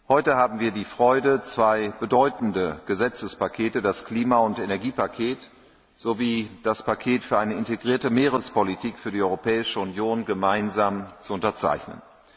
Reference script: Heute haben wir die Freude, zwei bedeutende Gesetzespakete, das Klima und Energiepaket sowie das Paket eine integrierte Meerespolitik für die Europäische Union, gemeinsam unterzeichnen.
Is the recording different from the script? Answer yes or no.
yes